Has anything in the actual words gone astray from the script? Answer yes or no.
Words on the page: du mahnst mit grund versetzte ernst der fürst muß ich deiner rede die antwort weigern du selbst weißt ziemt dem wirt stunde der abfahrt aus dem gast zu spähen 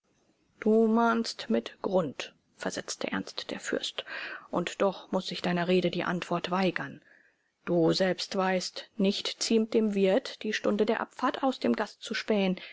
yes